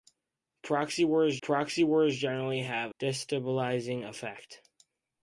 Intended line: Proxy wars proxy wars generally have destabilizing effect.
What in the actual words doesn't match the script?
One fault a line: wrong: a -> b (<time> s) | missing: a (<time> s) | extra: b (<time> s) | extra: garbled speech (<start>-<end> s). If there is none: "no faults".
no faults